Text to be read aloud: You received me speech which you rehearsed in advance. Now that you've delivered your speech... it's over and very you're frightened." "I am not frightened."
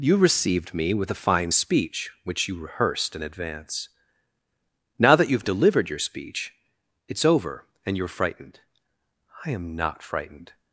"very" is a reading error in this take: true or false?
true